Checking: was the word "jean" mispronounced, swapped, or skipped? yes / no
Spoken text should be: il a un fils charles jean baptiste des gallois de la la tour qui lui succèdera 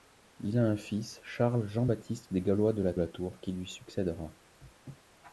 no